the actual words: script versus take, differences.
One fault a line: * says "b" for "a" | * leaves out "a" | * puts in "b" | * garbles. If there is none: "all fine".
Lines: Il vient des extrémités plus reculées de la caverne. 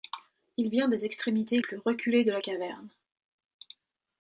all fine